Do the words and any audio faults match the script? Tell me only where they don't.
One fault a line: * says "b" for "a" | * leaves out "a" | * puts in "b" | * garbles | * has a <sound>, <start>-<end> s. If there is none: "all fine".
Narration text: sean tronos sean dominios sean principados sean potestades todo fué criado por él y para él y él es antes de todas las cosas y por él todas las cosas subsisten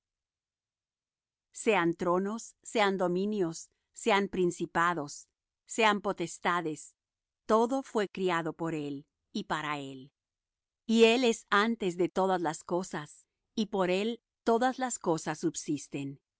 all fine